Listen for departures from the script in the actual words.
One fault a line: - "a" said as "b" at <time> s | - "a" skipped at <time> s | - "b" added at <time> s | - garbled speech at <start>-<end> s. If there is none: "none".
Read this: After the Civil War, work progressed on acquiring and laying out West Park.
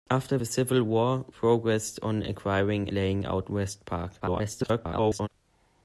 - "work" skipped at 1.2 s
- "and" skipped at 2.9 s
- garbled speech at 4.2-5.3 s